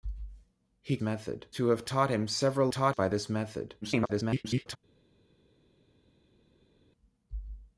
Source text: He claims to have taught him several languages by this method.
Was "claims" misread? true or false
true